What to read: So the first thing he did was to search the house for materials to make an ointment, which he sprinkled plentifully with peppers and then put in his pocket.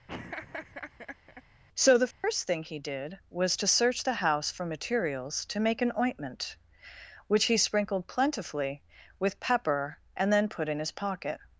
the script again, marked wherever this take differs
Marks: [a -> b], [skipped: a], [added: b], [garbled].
So the first thing he did was to search the house for materials to make an ointment, which he sprinkled plentifully with [peppers -> pepper] and then put in his pocket.